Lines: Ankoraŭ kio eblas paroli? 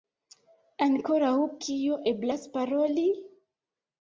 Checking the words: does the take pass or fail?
pass